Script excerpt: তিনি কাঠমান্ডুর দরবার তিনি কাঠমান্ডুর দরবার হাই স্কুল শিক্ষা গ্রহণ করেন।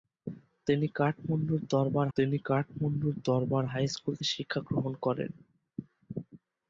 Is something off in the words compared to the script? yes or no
no